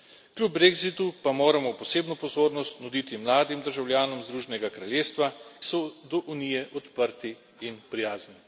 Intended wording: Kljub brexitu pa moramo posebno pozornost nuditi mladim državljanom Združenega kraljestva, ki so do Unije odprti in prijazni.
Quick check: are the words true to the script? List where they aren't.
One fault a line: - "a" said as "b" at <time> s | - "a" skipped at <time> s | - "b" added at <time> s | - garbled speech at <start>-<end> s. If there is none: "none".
- "ki" skipped at 5.3 s